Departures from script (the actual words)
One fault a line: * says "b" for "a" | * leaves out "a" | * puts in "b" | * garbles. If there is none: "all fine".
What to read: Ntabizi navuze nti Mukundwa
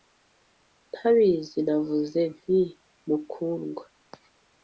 all fine